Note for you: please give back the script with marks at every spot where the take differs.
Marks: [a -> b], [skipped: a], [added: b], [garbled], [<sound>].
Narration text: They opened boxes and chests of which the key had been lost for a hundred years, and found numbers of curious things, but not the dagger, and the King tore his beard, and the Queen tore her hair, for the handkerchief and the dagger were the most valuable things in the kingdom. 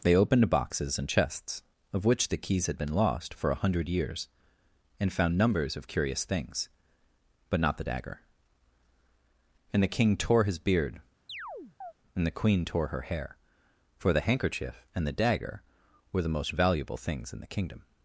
They opened boxes and chests of which the [key -> keys] had been lost for a hundred years, and found numbers of curious things, but not the dagger, and the King tore his beard, [chirp] and the Queen tore her hair, for the handkerchief and the dagger were the most valuable things in the kingdom.